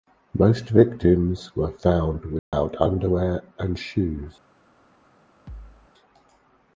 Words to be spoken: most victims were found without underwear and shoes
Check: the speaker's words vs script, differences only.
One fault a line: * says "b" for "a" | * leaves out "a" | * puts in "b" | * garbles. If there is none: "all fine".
all fine